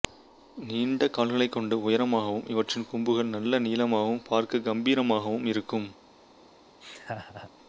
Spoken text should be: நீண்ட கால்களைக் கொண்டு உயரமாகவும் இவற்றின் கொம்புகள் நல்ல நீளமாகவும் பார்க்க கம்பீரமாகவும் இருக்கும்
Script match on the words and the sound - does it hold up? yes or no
no